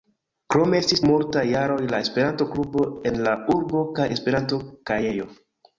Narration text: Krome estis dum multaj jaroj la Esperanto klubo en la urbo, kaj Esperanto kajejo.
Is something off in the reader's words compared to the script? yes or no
yes